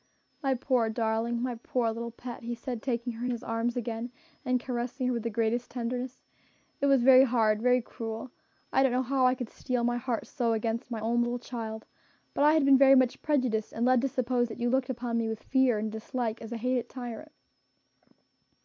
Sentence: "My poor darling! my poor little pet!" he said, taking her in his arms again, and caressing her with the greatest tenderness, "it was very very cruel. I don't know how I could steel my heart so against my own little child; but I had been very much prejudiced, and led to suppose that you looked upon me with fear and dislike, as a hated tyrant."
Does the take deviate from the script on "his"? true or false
false